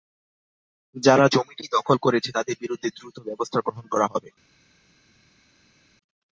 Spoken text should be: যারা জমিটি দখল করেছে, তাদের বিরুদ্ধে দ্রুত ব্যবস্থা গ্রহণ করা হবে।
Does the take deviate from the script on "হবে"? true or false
false